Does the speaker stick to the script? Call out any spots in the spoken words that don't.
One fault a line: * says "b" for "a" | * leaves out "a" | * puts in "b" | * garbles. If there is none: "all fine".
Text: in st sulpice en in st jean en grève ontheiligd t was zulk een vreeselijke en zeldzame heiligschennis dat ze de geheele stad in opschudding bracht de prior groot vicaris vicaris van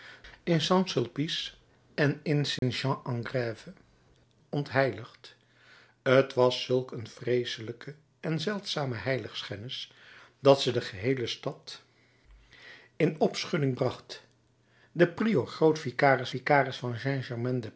all fine